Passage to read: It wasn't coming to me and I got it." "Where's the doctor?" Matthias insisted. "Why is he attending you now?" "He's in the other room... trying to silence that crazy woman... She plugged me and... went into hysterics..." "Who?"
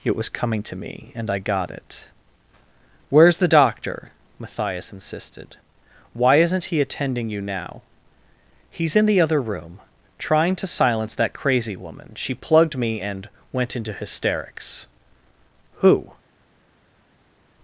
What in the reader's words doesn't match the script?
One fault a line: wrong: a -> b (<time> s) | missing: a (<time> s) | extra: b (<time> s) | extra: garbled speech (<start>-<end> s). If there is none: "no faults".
wrong: wasn't -> was (0.1 s)
wrong: is -> isn't (6.4 s)